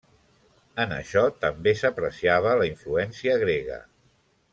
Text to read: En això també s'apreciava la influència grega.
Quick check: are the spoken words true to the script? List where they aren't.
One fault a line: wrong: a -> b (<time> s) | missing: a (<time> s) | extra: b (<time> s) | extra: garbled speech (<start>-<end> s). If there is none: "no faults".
no faults